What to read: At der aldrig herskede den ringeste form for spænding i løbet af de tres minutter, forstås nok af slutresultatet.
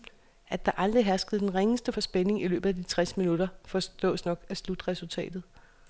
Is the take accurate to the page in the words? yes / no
no